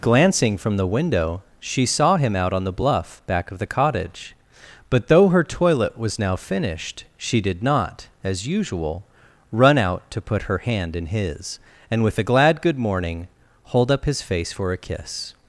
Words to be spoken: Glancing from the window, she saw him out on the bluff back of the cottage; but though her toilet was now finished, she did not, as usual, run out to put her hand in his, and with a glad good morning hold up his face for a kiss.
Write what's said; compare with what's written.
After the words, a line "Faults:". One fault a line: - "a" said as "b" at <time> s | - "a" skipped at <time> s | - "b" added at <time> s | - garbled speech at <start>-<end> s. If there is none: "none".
Glancing from the window, she saw him out on the bluff back of the cottage; but though her toilet was now finished, she did not, as usual, run out to put her hand in his, and with a glad good morning hold up his face for a kiss.
Faults:
none